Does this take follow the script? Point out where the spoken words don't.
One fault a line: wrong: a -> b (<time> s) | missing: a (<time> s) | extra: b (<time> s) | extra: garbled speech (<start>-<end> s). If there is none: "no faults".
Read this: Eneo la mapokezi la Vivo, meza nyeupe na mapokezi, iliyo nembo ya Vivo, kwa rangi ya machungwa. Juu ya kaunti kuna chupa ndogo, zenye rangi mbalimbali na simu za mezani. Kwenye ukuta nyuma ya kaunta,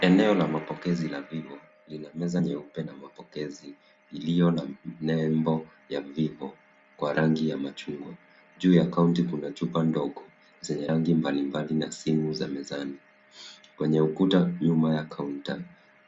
extra: lina (1.9 s)
extra: na (4.5 s)